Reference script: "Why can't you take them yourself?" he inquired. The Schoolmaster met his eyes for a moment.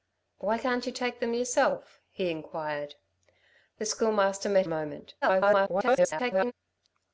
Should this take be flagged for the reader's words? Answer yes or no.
yes